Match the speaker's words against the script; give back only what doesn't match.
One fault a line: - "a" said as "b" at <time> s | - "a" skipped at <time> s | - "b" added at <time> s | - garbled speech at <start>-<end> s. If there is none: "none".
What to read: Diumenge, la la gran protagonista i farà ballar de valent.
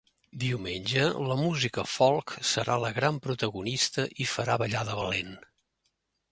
- "música folk serà" added at 1.4 s